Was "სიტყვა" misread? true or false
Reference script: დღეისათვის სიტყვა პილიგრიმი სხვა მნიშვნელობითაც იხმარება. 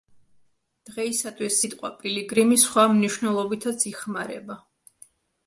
false